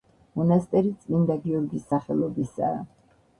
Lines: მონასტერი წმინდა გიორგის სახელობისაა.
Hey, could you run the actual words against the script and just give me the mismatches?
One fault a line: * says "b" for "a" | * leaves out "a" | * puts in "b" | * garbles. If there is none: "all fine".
all fine